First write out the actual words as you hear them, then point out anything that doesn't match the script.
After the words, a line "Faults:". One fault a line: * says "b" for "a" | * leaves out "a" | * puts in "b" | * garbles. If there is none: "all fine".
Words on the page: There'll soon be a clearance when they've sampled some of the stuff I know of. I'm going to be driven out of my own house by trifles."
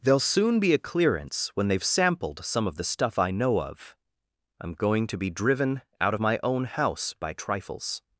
There'll soon be a clearance when they've sampled some of the stuff I know of. I'm going to be driven out of my own house by trifles."
Faults:
all fine